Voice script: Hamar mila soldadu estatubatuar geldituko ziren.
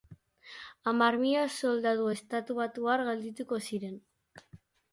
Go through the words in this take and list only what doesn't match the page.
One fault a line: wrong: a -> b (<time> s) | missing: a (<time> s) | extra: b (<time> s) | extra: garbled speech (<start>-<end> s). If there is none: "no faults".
no faults